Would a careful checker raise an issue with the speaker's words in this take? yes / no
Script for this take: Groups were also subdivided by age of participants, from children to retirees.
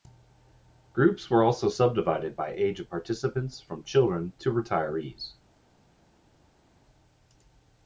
no